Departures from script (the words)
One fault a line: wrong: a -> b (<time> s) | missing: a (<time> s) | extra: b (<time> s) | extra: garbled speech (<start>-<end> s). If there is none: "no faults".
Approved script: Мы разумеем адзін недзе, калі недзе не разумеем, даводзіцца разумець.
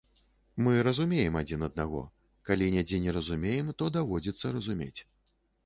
wrong: недзе -> аднаго (1.7 s)
extra: то (3.8 s)